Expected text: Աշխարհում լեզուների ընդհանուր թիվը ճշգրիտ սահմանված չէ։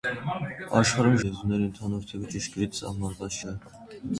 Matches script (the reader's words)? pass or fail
pass